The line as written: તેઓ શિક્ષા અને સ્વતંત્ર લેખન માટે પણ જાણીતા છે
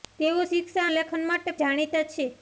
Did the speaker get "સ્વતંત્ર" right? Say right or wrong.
wrong